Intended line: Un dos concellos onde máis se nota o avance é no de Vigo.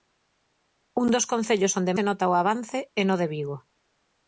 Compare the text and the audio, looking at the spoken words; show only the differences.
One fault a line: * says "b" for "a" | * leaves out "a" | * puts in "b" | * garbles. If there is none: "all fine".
* leaves out "máis"